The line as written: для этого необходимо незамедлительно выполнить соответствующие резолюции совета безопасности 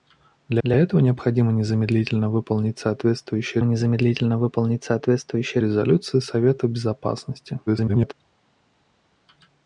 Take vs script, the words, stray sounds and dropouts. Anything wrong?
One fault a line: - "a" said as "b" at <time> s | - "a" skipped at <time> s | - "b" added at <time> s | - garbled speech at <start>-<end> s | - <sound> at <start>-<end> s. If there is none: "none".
- "для" added at 0.6 s
- "незамедлительно выполнить соответствующие" added at 3.6 s
- garbled speech at 7.7-8.1 s